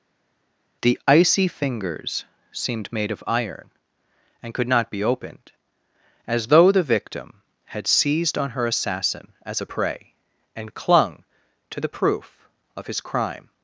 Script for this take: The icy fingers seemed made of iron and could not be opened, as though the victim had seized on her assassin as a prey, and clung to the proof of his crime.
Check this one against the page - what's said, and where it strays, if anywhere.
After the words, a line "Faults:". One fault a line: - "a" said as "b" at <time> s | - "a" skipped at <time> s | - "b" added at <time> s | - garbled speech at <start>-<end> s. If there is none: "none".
The icy fingers seemed made of iron and could not be opened, as though the victim had seized on her assassin as a prey, and clung to the proof of his crime.
Faults:
none